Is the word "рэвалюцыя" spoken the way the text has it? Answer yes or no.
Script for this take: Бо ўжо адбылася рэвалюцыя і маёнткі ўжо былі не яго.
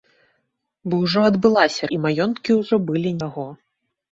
no